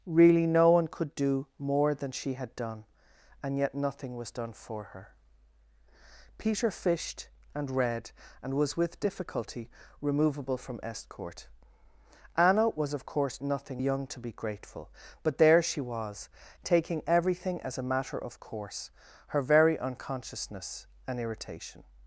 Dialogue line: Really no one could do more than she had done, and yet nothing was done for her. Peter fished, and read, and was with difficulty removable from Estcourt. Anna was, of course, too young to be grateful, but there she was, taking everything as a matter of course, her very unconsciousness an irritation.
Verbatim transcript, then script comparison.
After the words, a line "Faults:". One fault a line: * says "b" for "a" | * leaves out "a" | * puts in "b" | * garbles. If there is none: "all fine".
Really no one could do more than she had done, and yet nothing was done for her. Peter fished, and read, and was with difficulty removable from Estcourt. Anna was, of course, nothing young to be grateful, but there she was, taking everything as a matter of course, her very unconsciousness an irritation.
Faults:
* says "nothing" for "too"